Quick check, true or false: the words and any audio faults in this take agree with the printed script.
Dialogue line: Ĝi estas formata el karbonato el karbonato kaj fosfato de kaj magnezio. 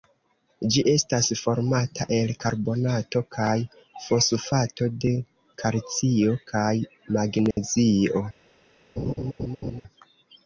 false